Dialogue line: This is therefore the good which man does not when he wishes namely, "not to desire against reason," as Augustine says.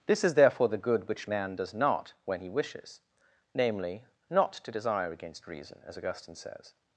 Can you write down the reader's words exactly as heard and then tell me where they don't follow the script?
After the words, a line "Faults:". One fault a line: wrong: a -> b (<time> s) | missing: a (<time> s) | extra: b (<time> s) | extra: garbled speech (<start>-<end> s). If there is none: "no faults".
This is therefore the good which man does not when he wishes namely, "not to desire against reason," as Augustine says.
Faults:
no faults